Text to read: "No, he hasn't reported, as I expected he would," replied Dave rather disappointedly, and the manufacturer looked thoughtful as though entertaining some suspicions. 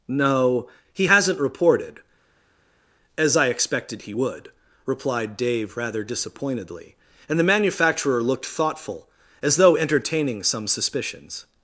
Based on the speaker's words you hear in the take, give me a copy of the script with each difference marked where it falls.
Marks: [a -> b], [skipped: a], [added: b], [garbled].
"No, he hasn't reported, as I expected he would," replied Dave rather disappointedly, and the manufacturer looked thoughtful as though entertaining some suspicions.